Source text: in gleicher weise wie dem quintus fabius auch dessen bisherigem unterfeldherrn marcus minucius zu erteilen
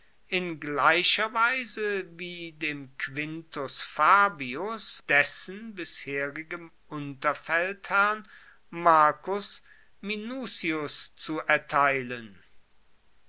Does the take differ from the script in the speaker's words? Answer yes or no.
yes